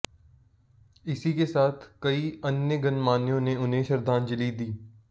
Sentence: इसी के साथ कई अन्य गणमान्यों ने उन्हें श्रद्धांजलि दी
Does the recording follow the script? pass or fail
pass